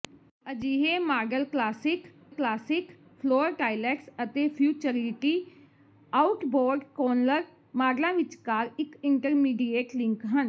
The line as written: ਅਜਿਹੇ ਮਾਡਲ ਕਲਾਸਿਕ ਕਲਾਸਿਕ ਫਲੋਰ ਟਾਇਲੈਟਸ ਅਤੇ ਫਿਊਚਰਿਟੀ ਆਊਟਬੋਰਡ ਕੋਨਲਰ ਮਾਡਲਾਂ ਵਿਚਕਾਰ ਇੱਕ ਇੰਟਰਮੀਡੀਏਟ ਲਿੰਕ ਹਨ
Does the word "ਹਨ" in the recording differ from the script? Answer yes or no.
no